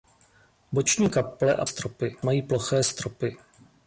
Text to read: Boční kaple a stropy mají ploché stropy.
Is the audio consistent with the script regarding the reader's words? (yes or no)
yes